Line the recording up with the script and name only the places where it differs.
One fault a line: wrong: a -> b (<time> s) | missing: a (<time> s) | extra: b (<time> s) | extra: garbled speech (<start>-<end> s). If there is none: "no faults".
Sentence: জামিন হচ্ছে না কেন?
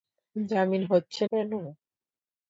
missing: না (1.2 s)